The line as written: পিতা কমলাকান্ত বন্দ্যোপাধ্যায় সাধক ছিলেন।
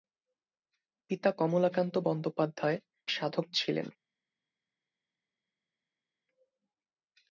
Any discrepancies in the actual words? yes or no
no